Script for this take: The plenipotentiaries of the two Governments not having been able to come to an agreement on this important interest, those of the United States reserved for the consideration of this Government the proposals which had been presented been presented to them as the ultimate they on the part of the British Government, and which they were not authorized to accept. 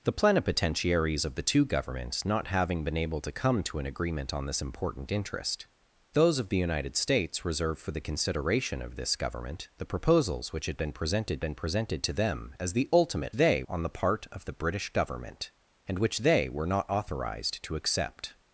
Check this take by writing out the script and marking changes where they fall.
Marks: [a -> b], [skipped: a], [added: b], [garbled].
The plenipotentiaries of the two Governments not having been able to come to an agreement on this important interest, those of the United States reserved for the consideration of this Government the proposals which had been presented been presented to them as the ultimate they on the part of the British Government, and which they were not authorized to accept.